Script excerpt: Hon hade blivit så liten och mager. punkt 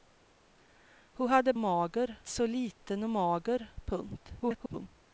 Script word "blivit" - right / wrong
wrong